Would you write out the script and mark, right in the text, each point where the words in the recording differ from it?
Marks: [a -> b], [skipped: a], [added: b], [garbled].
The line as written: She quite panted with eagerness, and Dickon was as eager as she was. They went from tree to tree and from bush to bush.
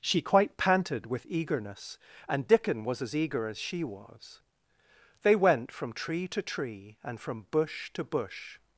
She quite panted with eagerness, and Dickon was as eager as she was. They went from tree to tree and from bush to bush.